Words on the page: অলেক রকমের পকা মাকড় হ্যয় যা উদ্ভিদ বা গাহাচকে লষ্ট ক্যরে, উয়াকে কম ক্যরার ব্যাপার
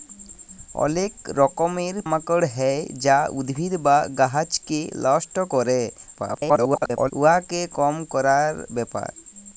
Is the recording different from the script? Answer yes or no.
yes